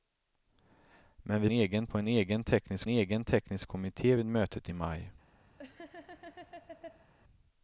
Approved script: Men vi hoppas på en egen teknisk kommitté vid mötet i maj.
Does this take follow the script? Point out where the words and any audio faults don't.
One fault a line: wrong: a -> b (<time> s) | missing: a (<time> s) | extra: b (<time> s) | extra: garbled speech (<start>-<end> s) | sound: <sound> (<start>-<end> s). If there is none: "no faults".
wrong: hoppas -> egen (1.5 s)
extra: egen teknisk (2.9 s)
sound: laugh (5.6-7.1 s)